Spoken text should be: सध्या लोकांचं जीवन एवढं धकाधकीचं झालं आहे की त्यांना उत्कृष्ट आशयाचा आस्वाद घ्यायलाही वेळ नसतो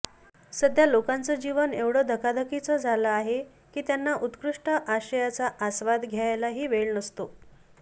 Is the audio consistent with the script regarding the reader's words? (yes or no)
yes